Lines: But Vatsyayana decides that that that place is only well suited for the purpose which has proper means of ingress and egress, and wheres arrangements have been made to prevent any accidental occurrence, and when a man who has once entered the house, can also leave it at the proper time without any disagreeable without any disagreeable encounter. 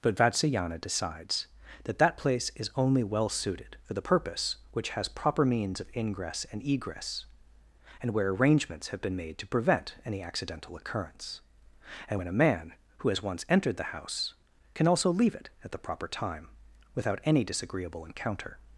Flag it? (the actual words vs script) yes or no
yes